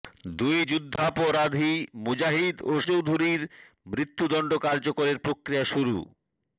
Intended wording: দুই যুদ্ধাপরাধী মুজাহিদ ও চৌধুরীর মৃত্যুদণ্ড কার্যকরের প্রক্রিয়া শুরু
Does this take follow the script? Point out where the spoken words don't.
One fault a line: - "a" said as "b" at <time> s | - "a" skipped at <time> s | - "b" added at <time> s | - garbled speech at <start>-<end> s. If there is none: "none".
none